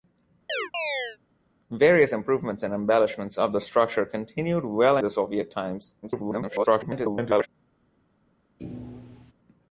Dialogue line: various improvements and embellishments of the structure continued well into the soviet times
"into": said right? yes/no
no